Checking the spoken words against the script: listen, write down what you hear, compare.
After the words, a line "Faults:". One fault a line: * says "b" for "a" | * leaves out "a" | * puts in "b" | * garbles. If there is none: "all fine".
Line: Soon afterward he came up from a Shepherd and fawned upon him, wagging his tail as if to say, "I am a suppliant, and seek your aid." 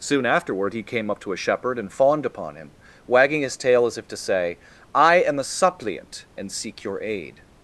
Soon afterward he came up to a Shepherd and fawned upon him, wagging his tail as if to say, "I am a suppliant, and seek your aid."
Faults:
* says "to" for "from"